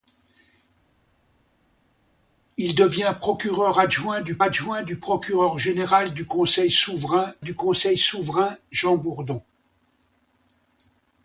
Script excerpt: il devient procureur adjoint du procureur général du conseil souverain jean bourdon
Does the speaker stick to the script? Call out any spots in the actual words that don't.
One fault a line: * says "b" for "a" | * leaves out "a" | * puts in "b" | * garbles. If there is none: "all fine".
* puts in "adjoint du"
* puts in "du conseil souverain"